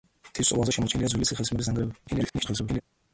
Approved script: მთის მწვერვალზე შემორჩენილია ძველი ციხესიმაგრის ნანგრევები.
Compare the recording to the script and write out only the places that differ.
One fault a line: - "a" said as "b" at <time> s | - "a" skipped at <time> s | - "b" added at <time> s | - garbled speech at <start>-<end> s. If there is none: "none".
- garbled speech at 2.1-2.8 s